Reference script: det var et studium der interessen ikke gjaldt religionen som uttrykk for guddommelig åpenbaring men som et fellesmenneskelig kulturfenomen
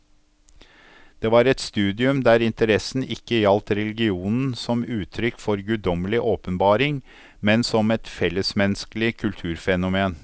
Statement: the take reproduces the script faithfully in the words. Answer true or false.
true